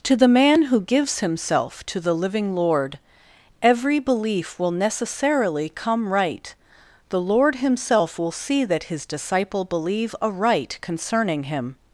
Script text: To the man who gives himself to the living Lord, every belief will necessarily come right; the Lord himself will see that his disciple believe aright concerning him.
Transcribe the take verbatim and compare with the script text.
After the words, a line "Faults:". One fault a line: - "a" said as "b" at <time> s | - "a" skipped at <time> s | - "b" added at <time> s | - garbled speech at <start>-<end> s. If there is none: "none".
To the man who gives himself to the living Lord, every belief will necessarily come right; the Lord himself will see that his disciple believe aright concerning him.
Faults:
none